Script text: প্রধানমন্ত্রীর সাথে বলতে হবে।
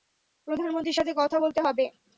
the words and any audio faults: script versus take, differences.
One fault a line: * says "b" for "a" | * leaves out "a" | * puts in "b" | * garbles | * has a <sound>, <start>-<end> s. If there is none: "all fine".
* puts in "কথা"